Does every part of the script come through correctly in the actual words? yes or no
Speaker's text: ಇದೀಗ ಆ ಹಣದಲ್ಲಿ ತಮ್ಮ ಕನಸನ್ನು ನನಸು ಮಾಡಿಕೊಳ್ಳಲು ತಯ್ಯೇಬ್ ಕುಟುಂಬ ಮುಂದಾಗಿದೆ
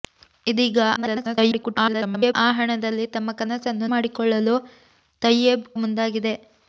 no